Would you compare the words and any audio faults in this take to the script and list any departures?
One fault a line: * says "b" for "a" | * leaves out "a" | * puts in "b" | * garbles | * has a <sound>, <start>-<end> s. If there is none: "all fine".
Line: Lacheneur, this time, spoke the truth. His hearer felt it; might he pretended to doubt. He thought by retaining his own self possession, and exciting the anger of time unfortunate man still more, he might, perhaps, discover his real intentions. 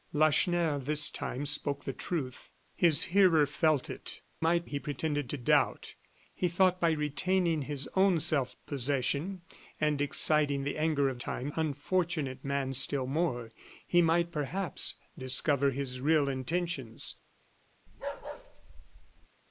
* has a bark, 17.9-19.3 s